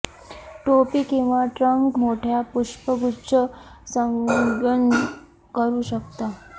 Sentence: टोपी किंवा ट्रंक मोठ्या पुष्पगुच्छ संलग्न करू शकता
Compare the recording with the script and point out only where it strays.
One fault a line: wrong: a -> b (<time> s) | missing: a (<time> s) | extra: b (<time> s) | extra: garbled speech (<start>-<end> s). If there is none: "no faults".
no faults